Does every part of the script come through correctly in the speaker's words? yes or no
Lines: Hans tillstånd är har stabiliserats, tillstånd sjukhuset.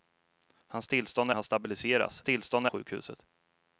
yes